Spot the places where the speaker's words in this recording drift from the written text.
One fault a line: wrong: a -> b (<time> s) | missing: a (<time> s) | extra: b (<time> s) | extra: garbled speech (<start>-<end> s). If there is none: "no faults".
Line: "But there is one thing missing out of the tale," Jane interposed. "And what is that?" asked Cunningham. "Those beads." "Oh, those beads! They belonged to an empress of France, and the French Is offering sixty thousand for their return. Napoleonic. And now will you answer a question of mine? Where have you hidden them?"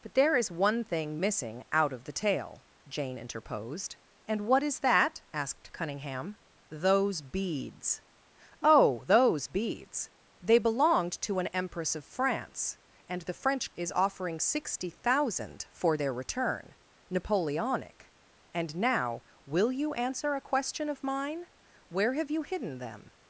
no faults